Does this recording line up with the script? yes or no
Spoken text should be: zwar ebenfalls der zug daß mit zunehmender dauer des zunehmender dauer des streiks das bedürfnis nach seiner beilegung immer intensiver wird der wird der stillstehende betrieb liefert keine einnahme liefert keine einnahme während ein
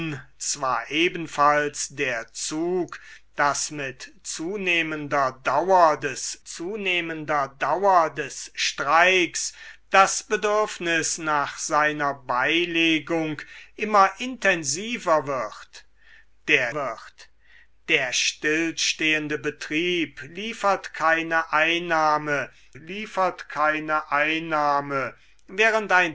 yes